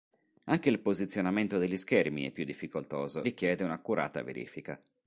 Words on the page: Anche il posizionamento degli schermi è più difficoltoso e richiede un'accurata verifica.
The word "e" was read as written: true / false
false